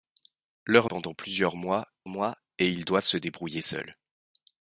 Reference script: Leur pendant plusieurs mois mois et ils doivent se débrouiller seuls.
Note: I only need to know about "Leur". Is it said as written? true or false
true